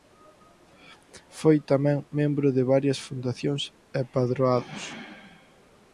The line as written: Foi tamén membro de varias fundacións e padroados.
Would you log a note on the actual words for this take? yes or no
no